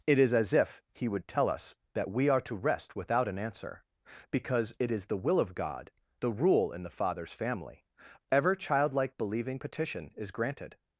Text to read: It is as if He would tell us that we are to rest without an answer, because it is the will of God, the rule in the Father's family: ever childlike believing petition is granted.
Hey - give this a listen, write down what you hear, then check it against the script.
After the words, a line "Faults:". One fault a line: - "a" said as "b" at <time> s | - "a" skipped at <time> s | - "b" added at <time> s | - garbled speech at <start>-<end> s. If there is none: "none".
It is as if He would tell us that we are to rest without an answer, because it is the will of God, the rule in the Father's family: ever childlike believing petition is granted.
Faults:
none